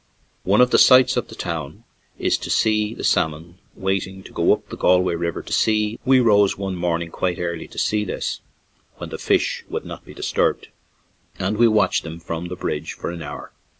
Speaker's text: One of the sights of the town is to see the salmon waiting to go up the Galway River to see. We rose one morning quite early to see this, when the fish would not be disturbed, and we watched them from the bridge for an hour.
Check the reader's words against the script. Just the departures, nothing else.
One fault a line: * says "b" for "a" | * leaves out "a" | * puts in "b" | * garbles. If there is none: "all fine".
all fine